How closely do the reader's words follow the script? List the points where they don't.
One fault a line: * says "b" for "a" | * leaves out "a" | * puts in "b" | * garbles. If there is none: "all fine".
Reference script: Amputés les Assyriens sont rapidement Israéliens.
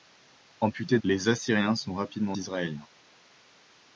all fine